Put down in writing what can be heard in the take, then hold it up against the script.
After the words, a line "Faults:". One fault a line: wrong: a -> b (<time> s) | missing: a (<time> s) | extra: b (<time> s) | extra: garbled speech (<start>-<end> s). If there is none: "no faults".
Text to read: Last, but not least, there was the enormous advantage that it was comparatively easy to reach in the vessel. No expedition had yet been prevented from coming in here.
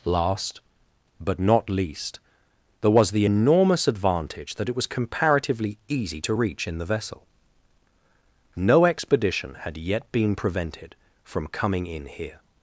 Last, but not least, there was the enormous advantage that it was comparatively easy to reach in the vessel. No expedition had yet been prevented from coming in here.
Faults:
no faults